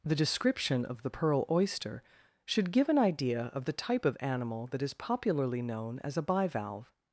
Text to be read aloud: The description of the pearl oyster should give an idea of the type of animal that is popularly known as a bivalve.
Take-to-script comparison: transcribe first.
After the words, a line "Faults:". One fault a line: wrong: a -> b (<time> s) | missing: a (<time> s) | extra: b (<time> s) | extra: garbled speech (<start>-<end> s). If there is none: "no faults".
The description of the pearl oyster should give an idea of the type of animal that is popularly known as a bivalve.
Faults:
no faults